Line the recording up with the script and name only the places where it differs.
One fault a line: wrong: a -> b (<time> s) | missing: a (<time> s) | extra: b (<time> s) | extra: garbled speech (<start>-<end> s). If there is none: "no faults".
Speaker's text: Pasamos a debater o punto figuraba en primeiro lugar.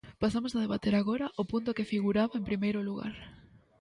extra: agora (0.9 s)
extra: que (1.8 s)